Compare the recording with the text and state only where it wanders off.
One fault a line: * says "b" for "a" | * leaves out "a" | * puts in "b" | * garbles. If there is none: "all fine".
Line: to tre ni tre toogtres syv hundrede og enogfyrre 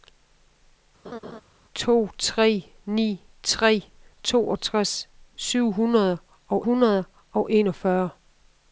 * puts in "hundrede og"